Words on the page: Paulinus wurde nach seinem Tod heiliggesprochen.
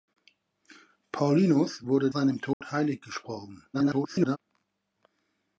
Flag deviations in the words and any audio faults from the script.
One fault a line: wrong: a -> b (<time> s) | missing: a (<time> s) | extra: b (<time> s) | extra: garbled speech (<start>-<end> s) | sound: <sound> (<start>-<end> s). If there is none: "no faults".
missing: nach (2.1 s)
sound: dropout (2.5-2.6 s)
extra: garbled speech (3.7-4.4 s)